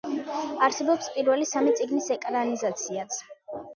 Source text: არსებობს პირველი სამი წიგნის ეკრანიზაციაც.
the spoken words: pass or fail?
pass